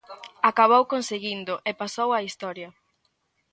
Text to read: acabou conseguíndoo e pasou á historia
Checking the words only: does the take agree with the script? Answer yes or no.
yes